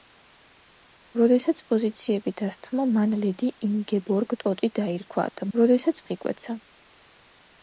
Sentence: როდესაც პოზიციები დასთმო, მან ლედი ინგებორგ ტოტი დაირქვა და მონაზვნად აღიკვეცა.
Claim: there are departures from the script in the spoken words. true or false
true